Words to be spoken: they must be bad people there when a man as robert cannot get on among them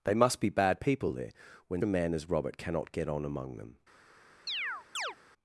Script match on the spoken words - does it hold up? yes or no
yes